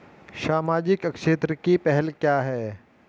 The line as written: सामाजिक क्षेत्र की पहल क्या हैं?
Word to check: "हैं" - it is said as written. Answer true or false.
true